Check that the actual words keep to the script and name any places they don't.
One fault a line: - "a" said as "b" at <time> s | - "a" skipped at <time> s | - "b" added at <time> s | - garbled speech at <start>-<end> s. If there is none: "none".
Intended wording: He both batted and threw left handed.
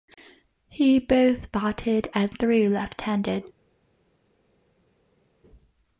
none